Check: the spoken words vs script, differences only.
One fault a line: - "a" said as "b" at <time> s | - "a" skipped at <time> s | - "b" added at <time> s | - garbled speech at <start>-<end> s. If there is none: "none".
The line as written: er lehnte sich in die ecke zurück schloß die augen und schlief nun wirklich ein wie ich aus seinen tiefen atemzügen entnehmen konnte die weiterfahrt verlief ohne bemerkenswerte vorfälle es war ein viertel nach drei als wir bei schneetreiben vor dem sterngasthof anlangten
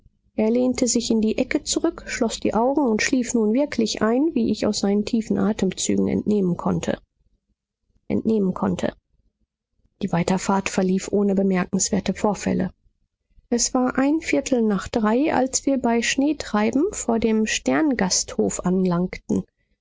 - "entnehmen konnte" added at 8.1 s